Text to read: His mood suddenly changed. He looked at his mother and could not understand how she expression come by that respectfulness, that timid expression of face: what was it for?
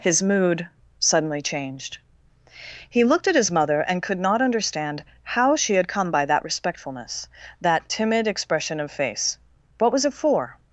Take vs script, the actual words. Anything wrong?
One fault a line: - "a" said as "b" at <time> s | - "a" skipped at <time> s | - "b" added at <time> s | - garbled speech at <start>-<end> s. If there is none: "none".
- "expression" said as "had" at 5.8 s